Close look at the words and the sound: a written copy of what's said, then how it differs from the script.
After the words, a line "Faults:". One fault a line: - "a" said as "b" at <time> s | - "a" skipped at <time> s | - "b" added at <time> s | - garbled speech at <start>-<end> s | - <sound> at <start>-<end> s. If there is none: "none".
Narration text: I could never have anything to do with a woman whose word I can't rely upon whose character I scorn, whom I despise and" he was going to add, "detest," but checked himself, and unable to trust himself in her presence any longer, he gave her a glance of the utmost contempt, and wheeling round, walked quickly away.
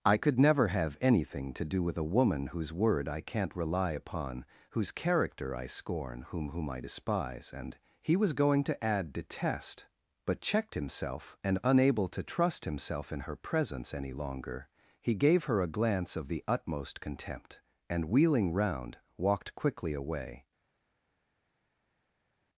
I could never have anything to do with a woman whose word I can't rely upon whose character I scorn, whom whom I despise and" he was going to add, "detest," but checked himself, and unable to trust himself in her presence any longer, he gave her a glance of the utmost contempt, and wheeling round, walked quickly away.
Faults:
- "whom" added at 6.5 s